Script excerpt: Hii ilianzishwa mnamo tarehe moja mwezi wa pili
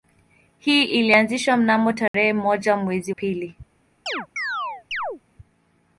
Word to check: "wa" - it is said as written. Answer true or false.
false